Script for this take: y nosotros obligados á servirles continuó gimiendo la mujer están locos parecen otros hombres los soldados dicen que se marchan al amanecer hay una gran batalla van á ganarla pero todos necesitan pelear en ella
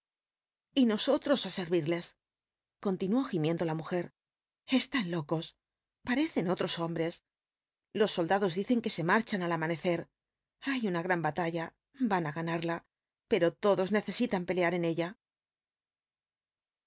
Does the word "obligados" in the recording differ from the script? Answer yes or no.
yes